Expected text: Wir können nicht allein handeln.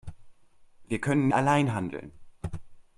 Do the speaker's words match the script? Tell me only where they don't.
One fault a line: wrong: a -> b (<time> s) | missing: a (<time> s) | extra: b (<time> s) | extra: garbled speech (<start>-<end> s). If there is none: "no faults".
missing: nicht (1.3 s)